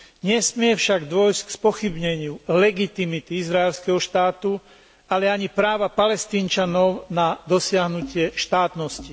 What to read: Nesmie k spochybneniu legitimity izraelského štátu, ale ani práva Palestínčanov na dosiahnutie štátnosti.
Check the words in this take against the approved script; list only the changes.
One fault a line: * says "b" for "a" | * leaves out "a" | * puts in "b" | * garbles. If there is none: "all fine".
* puts in "však dôjsť"